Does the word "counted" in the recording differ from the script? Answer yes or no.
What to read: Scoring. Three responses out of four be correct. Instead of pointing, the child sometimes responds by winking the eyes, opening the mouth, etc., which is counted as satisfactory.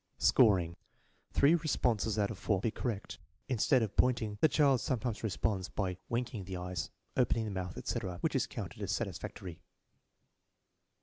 no